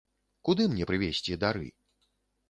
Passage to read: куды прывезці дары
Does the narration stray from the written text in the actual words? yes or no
yes